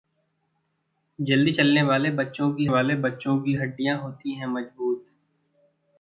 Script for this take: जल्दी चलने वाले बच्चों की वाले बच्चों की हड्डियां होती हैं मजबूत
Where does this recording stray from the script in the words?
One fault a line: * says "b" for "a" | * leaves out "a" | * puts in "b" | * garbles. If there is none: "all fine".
all fine